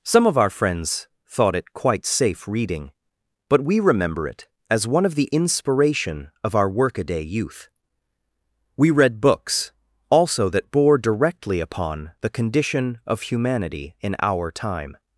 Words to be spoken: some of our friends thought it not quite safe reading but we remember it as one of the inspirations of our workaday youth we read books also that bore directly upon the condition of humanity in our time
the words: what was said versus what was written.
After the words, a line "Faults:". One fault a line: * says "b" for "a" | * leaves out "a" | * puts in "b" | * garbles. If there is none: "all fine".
some of our friends thought it quite safe reading but we remember it as one of the inspiration of our workaday youth we read books also that bore directly upon the condition of humanity in our time
Faults:
* leaves out "not"
* says "inspiration" for "inspirations"